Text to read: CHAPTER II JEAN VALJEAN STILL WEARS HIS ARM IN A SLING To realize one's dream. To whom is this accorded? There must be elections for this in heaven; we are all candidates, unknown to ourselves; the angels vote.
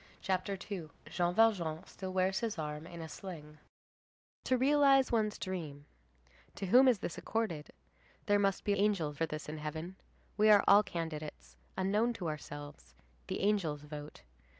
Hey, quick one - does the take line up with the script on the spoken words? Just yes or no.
no